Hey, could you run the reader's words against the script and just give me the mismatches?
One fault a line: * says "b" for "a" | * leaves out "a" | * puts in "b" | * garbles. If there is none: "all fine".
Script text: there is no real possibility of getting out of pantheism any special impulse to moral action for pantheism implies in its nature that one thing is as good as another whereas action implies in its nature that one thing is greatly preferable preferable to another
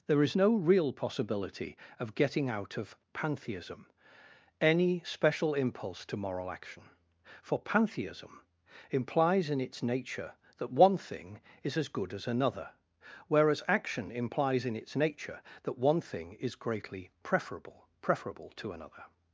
all fine